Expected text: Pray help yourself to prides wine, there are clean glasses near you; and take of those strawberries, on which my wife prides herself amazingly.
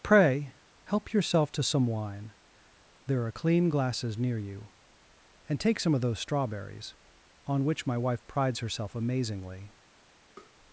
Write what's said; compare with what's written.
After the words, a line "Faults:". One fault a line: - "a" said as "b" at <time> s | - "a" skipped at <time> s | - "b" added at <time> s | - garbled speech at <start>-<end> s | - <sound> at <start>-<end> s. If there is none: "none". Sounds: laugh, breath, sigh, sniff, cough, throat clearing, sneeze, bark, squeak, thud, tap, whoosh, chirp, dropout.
Pray help yourself to some wine, there are clean glasses near you; and take some of those strawberries, on which my wife prides herself amazingly.
Faults:
- "prides" said as "some" at 1.6 s
- "some" added at 5.8 s
- tap at 10.4-10.5 s